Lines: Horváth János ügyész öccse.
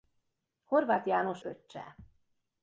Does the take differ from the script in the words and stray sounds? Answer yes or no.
yes